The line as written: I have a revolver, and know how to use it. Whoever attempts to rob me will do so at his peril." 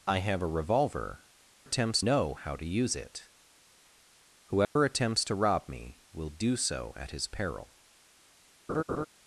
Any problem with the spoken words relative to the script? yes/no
yes